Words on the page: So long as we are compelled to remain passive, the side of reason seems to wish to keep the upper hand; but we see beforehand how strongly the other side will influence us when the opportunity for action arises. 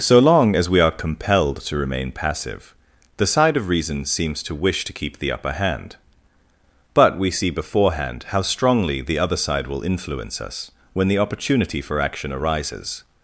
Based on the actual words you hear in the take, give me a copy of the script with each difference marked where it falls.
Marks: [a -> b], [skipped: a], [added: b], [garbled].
So long as we are compelled to remain passive, the side of reason seems to wish to keep the upper hand; but we see beforehand how strongly the other side will influence us when the opportunity for action arises.